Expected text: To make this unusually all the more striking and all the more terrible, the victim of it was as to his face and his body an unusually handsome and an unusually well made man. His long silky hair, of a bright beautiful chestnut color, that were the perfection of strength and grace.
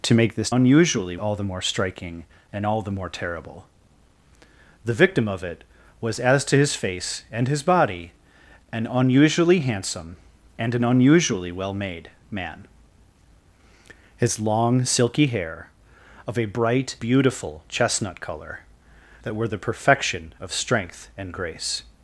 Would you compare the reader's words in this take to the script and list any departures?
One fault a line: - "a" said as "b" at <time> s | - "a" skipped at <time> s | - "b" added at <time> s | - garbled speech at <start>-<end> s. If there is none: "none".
none